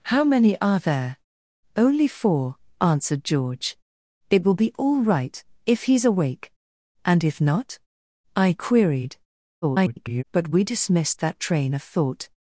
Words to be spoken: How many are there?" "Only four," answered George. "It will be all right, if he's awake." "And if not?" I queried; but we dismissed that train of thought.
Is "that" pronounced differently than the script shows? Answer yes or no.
no